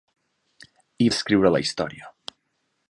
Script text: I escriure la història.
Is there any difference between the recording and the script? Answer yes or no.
no